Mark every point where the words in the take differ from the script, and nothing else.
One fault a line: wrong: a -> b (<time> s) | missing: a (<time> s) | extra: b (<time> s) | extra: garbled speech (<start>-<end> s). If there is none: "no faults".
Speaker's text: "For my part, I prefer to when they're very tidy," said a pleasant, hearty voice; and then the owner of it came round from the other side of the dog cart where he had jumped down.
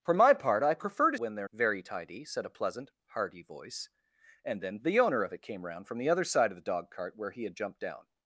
no faults